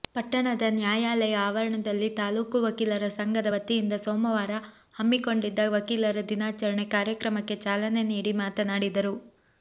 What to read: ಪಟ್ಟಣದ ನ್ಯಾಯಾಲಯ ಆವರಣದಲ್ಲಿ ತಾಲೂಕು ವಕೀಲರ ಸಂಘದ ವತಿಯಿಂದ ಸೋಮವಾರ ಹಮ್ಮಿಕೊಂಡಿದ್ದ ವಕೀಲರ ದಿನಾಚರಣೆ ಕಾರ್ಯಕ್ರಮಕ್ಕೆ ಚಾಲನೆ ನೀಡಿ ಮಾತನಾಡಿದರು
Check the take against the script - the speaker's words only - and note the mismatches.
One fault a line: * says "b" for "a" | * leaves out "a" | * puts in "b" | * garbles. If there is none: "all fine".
all fine